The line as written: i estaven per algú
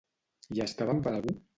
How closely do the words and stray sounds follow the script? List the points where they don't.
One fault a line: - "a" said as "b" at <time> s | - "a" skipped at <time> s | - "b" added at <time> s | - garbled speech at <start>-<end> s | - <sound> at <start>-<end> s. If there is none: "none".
none